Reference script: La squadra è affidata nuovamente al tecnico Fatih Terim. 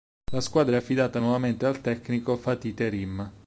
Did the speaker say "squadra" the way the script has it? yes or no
yes